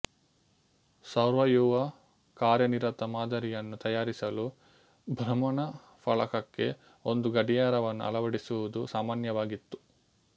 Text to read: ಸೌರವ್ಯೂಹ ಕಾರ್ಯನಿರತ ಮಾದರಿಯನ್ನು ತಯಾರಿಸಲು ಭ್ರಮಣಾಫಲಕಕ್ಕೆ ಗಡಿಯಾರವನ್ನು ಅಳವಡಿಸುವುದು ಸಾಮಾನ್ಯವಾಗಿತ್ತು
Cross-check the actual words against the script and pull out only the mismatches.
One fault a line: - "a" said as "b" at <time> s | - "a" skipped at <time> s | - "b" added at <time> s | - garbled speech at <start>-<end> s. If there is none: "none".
- "ಒಂದು" added at 7.0 s